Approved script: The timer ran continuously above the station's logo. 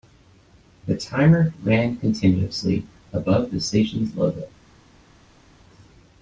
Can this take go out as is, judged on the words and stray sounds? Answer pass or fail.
pass